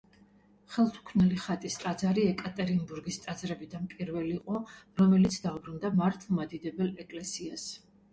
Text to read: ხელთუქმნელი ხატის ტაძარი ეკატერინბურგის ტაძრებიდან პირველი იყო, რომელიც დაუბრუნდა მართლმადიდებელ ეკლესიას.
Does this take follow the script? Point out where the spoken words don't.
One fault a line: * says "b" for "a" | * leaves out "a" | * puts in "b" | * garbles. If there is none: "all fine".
all fine